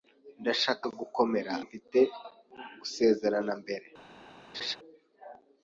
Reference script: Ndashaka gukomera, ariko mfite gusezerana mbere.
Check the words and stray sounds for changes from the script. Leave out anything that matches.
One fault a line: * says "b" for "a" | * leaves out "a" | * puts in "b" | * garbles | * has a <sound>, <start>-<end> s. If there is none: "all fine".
* leaves out "ariko"
* has a laugh, 4.5-4.8 s